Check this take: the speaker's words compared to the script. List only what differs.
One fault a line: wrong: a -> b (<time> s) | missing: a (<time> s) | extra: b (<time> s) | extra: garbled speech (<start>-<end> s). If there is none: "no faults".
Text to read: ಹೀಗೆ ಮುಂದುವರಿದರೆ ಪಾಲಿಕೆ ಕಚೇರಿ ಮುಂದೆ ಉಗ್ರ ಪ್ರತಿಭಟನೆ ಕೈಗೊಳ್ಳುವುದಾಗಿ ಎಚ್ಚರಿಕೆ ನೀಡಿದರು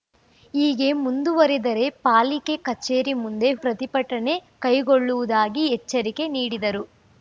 missing: ಉಗ್ರ (3.5 s)